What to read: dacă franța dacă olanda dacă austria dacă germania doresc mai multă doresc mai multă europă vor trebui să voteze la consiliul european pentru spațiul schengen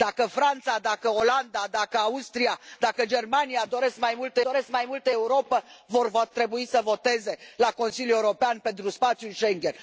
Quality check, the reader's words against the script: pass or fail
pass